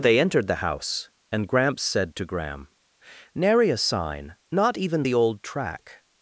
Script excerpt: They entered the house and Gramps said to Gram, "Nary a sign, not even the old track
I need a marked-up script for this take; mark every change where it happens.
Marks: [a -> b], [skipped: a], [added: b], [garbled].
They entered the house and Gramps said to Gram, "Nary a sign, not even the old track